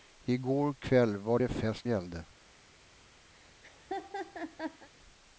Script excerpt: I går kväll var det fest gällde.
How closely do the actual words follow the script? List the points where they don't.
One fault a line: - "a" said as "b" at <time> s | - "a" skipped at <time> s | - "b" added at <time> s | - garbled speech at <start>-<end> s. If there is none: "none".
none